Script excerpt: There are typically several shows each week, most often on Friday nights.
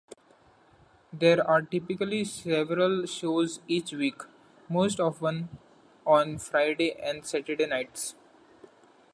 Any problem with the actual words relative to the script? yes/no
yes